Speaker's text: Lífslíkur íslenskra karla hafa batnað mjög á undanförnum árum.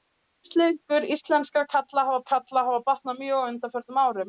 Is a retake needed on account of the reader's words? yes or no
yes